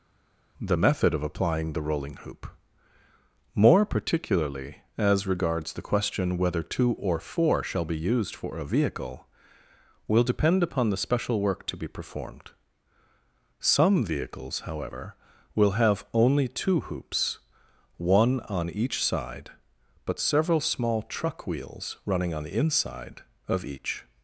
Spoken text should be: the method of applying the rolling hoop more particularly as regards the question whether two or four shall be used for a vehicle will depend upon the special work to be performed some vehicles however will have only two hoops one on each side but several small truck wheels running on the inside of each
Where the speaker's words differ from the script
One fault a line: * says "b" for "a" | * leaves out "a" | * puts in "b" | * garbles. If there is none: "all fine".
all fine